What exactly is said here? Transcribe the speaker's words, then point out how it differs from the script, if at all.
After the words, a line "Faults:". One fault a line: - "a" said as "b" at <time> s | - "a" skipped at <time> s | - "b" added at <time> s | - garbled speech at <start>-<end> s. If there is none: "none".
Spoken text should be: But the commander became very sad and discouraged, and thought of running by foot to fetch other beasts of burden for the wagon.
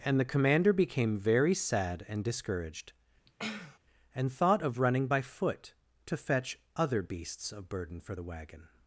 And the commander became very sad and discouraged, and thought of running by foot to fetch other beasts of burden for the wagon.
Faults:
- "But" said as "And" at 0.0 s